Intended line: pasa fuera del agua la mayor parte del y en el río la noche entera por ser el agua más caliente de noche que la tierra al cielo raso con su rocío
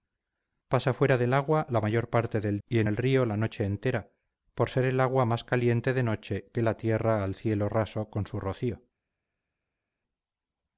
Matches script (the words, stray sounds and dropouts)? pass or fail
pass